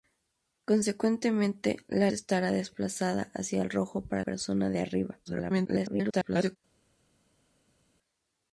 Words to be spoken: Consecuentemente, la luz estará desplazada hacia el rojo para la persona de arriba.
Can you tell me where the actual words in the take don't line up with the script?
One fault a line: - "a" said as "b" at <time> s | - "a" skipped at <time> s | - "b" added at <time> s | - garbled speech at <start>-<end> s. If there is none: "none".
- "luz" skipped at 2.1 s
- "la" skipped at 4.2 s
- garbled speech at 5.3-6.6 s